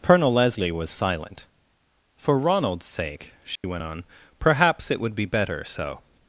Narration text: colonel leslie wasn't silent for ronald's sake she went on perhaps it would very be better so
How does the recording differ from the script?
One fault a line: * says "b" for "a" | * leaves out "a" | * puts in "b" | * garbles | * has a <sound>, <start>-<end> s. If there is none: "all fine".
* says "was" for "wasn't"
* has a dropout, 3.6-3.6 s
* leaves out "very"